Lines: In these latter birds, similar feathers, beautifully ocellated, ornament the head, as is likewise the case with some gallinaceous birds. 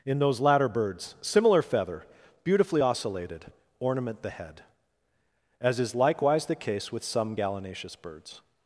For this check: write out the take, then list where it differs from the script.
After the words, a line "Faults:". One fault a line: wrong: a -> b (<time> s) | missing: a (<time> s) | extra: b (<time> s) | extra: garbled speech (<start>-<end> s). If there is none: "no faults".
In those latter birds, similar feather, beautifully ocellated, ornament the head, as is likewise the case with some gallinaceous birds.
Faults:
wrong: these -> those (0.2 s)
wrong: feathers -> feather (1.6 s)